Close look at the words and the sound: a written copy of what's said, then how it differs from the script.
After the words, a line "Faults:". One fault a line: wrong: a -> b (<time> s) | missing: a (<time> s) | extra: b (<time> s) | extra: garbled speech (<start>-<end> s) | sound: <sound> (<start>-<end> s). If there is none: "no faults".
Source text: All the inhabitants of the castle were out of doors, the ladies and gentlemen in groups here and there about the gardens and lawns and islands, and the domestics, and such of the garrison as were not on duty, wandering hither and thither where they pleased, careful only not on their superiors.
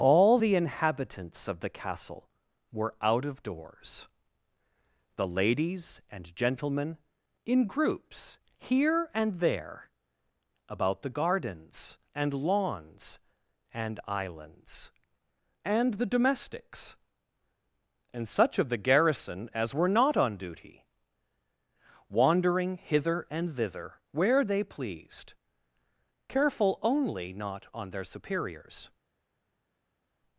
All the inhabitants of the castle were out of doors, the ladies and gentlemen in groups here and there about the gardens and lawns and islands, and the domestics, and such of the garrison as were not on duty, wandering hither and thither where they pleased, careful only not on their superiors.
Faults:
no faults